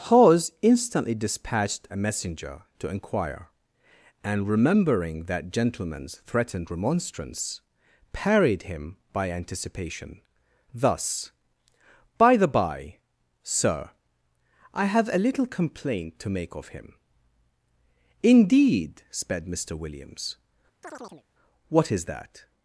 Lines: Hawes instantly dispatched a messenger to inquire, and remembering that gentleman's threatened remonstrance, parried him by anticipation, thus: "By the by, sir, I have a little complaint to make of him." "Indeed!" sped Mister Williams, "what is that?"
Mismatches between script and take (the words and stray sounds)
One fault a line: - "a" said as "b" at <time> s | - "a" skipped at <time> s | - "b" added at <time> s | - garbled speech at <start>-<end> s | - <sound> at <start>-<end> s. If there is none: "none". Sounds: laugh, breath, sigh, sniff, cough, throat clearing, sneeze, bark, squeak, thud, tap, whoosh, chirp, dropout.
- chirp at 20.8-21.2 s